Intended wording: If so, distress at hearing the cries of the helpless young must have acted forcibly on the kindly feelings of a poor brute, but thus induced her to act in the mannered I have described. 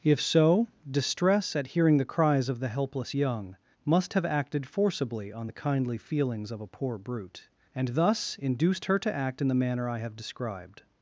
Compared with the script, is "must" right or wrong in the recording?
right